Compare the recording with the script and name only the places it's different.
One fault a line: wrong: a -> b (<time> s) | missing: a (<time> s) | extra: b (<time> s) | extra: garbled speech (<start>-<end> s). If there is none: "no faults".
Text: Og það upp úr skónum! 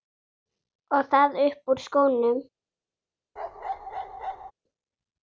no faults